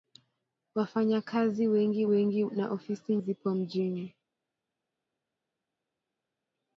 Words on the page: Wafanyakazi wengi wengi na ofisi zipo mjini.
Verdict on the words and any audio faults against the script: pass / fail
pass